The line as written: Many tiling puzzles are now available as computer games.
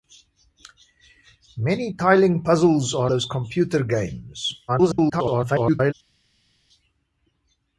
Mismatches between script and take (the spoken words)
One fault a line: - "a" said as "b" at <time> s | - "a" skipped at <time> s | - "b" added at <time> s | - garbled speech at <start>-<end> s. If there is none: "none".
- "now available" skipped at 3.1 s
- garbled speech at 4.7-5.9 s